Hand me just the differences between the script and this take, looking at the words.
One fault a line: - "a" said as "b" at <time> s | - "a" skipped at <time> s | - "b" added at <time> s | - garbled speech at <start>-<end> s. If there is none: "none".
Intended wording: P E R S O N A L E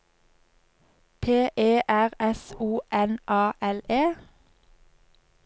none